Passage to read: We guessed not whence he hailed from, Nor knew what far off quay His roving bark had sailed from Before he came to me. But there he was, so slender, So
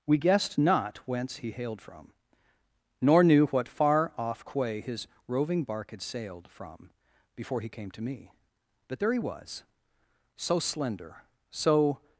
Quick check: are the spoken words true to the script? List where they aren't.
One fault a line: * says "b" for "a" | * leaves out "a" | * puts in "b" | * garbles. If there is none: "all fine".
all fine